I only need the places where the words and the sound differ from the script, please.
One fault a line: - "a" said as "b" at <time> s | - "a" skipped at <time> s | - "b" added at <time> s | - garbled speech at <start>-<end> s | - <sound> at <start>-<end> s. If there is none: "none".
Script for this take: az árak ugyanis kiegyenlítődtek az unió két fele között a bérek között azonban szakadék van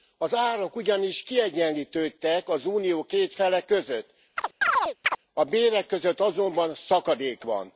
- chirp at 4.4-5.2 s